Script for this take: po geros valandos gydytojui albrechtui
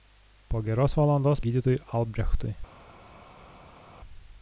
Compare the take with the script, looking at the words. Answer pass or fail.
pass